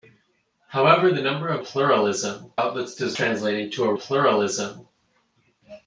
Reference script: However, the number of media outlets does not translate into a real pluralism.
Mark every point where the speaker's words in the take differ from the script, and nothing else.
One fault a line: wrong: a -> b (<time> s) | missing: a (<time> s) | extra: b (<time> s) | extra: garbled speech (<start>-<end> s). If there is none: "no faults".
wrong: media -> pluralism (1.6 s)
missing: not (3.2 s)
missing: real (3.9 s)